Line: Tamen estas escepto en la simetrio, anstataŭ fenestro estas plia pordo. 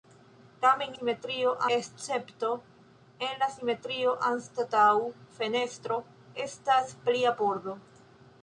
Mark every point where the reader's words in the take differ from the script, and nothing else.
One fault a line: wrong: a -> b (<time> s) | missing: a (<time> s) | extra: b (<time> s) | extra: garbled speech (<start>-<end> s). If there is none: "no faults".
wrong: estas -> simetrio (1.0 s)